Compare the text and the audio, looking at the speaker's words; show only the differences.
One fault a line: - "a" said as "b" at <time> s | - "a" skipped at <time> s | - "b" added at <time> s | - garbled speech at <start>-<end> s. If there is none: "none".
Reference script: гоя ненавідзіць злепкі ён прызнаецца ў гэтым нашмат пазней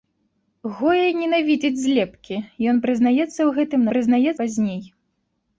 - "нашмат" said as "прызнаецца" at 3.9 s